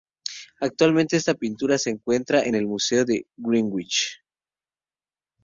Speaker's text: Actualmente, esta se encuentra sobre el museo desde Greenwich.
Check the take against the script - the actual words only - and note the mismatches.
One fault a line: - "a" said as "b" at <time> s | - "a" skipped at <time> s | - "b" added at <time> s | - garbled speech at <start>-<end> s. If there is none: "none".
- "pintura" added at 1.4 s
- "sobre" said as "en" at 2.4 s
- "desde" said as "de" at 3.0 s